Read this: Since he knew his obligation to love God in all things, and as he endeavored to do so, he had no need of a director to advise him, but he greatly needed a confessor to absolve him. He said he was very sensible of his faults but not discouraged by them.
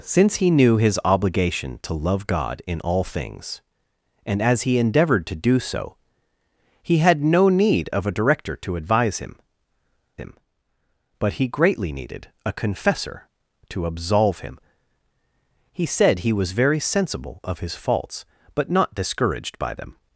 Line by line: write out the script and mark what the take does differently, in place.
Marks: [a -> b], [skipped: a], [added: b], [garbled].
Since he knew his obligation to love God in all things, and as he endeavored to do so, he had no need of a director to advise him, [added: him] but he greatly needed a confessor to absolve him. He said he was very sensible of his faults but not discouraged by them.